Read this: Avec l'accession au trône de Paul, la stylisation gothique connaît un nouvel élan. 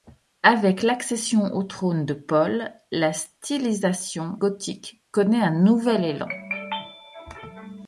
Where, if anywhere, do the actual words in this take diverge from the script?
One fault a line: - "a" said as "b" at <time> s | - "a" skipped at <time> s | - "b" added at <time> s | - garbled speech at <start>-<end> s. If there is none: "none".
none